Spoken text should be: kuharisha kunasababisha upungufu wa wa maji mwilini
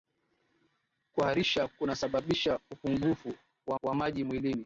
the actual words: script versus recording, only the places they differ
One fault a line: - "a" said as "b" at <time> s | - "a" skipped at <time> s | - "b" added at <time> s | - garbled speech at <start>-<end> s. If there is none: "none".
none